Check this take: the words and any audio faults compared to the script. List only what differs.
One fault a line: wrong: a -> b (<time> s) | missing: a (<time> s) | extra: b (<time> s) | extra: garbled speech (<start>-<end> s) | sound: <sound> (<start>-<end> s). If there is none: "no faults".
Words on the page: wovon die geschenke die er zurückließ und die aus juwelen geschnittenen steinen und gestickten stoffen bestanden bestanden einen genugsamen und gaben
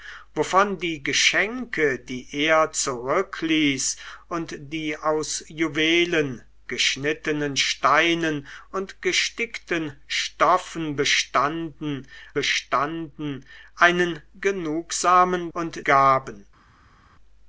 no faults